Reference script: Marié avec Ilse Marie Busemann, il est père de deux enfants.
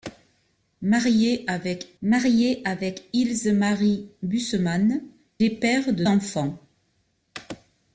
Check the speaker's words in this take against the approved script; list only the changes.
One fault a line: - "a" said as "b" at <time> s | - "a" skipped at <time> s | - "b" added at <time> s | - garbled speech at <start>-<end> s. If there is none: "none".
- "marié avec" added at 2.0 s
- "il" skipped at 5.0 s
- "deux" skipped at 6.0 s